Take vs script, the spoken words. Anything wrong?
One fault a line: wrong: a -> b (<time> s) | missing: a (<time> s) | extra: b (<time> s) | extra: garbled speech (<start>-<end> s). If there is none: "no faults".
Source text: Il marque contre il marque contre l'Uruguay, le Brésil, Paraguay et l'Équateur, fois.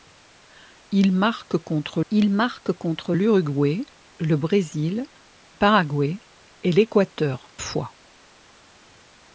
no faults